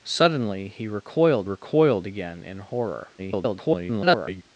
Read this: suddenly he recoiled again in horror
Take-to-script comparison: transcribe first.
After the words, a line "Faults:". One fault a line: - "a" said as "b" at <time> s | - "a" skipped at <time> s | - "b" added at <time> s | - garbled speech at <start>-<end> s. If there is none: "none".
suddenly he recoiled recoiled again in horror [garbled]
Faults:
- "recoiled" added at 1.4 s
- garbled speech at 3.2-4.4 s